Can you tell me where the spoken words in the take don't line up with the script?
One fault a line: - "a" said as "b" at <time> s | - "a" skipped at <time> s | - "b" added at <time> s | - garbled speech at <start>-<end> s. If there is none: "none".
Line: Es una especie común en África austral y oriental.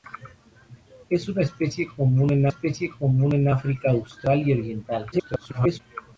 - "especie común en" added at 2.5 s
- garbled speech at 5.1-5.8 s